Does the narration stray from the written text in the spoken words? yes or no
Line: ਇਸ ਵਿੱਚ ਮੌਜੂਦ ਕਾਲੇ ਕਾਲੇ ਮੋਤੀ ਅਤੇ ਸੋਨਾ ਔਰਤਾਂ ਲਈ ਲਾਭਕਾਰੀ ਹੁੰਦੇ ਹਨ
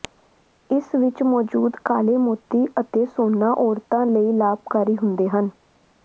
yes